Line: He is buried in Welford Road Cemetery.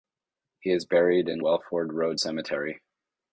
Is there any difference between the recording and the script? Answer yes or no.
no